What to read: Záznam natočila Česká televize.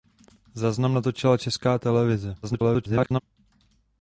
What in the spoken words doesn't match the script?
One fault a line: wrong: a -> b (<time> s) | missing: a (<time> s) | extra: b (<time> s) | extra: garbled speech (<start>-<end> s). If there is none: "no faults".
extra: garbled speech (2.4-3.2 s)